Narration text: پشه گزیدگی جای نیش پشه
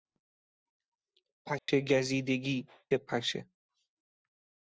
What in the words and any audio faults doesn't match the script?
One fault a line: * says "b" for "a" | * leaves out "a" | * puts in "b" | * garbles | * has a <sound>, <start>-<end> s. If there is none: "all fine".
* has a dropout, 1.6-1.7 s
* leaves out "جای نیش"